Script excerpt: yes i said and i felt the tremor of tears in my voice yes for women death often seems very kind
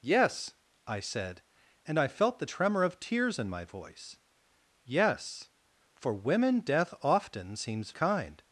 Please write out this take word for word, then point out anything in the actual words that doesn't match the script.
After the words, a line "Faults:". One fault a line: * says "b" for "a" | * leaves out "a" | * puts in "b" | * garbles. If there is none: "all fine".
yes i said and i felt the tremor of tears in my voice yes for women death often seems kind
Faults:
* leaves out "very"